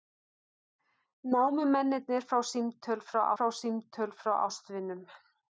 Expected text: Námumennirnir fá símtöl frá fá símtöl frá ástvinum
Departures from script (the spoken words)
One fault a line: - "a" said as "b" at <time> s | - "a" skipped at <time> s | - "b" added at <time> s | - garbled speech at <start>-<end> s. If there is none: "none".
none